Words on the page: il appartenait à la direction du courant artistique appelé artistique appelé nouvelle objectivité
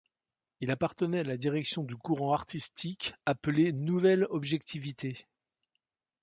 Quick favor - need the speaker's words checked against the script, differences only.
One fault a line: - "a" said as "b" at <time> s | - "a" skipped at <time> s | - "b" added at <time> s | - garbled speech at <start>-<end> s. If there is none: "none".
- "artistique appelé" skipped at 3.7 s